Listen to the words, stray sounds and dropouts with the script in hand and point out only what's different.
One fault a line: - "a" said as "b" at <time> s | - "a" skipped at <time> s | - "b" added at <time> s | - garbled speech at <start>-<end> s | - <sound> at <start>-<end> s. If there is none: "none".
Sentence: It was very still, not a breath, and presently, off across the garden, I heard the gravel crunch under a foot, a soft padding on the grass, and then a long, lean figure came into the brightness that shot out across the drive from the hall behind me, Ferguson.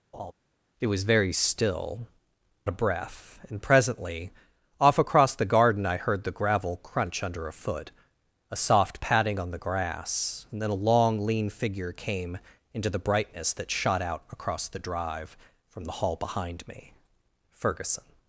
- laugh at 0.1-0.3 s
- "not" skipped at 2.1 s